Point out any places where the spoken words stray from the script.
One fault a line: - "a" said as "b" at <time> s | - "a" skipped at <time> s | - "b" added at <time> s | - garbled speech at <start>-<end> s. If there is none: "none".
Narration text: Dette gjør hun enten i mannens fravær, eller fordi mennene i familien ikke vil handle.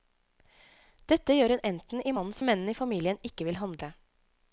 - "fravær eller fordi" skipped at 2.4 s